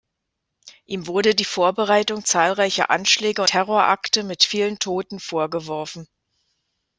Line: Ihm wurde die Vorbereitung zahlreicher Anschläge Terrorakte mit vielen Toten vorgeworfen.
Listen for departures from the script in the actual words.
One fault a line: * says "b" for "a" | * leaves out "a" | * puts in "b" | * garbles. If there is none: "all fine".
all fine